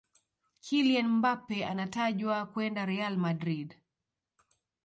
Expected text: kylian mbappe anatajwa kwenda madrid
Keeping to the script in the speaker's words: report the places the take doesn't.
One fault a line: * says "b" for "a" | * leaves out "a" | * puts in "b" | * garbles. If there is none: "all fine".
* puts in "real"